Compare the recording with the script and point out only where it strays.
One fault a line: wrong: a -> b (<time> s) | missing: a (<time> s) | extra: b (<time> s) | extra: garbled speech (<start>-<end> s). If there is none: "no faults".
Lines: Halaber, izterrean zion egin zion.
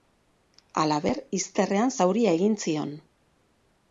wrong: zion -> zauria (2.0 s)